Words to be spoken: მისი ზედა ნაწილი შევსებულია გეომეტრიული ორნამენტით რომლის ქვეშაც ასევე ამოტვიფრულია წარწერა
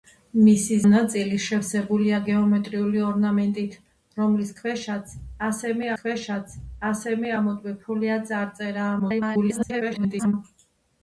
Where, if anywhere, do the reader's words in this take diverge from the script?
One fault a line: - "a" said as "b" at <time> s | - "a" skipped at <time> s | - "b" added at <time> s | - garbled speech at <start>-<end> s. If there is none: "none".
- "ზედა" skipped at 0.8 s
- "ქვეშაც ასევე" added at 6.0 s
- garbled speech at 9.0-10.3 s